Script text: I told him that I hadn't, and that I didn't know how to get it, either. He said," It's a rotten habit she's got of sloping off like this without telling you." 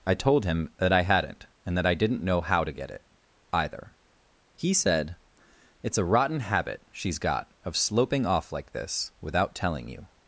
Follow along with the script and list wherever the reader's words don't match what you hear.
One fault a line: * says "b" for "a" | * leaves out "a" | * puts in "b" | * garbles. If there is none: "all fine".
all fine